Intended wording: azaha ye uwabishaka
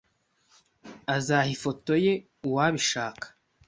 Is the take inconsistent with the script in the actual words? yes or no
yes